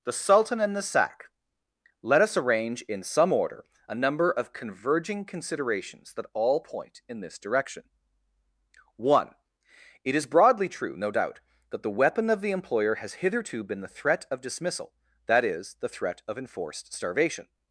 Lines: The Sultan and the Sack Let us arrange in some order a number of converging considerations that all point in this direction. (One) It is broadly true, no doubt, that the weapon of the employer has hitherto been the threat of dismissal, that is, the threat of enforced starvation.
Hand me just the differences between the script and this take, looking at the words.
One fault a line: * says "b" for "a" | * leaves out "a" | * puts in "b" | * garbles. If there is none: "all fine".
all fine